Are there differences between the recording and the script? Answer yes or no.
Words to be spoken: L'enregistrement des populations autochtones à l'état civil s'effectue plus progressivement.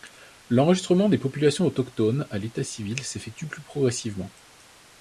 no